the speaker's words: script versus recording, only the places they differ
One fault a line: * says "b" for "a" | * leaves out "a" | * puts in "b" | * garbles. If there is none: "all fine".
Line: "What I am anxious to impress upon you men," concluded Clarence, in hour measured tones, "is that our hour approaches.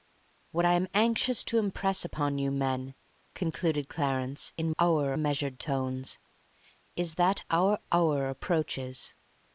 all fine